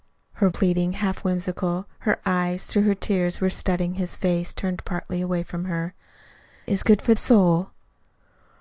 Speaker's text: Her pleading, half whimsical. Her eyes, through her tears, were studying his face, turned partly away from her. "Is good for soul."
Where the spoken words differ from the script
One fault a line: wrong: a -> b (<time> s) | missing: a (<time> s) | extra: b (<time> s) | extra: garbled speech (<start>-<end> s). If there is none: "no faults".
no faults